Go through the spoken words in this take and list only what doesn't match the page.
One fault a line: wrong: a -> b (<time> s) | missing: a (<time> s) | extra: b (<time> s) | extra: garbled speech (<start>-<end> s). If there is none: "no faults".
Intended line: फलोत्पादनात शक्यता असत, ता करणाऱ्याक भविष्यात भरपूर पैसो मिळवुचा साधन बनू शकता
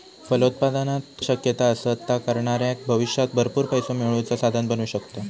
no faults